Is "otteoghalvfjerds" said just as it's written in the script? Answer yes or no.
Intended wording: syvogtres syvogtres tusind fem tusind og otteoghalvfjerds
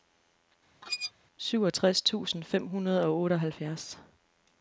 yes